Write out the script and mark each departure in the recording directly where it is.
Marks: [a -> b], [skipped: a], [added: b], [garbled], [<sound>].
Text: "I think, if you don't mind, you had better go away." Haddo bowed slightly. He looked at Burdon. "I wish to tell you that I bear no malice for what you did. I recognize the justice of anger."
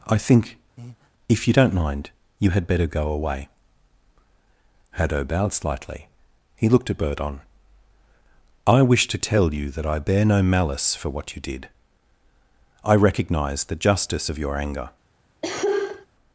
"I think, [breath] if you don't mind, you had better go away." Haddo bowed slightly. He looked at Burdon. "I wish to tell you that I bear no malice for what you did. I recognize the justice of [added: your] anger." [cough]